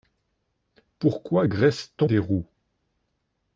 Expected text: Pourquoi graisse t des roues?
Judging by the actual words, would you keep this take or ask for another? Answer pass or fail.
pass